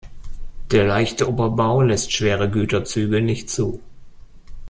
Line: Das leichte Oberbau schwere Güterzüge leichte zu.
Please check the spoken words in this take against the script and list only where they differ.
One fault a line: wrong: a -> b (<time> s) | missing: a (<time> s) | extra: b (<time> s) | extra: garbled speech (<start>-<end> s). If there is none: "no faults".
wrong: Das -> Der (0.7 s)
extra: lässt (1.8 s)
wrong: leichte -> nicht (3.2 s)